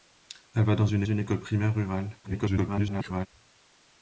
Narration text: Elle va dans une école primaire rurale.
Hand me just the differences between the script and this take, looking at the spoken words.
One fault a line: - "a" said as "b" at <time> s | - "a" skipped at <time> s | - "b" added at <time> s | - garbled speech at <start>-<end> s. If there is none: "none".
- "une" added at 1.0 s
- garbled speech at 2.2-3.3 s